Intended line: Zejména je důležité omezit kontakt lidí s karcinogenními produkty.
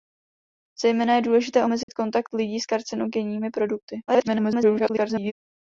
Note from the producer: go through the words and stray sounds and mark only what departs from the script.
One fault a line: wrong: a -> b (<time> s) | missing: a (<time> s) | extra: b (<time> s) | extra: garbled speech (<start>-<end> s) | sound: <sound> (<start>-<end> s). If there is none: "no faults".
sound: dropout (1.8-1.9 s)
extra: garbled speech (4.1-5.3 s)